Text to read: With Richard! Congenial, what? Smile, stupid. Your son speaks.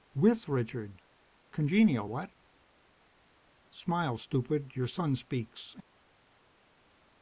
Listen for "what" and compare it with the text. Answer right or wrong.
right